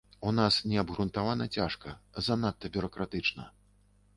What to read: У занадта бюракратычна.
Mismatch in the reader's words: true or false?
true